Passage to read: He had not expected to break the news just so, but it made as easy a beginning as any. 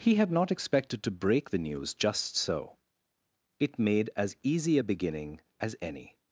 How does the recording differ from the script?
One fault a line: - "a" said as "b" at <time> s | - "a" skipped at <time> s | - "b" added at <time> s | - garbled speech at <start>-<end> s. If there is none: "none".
- "but" skipped at 2.8 s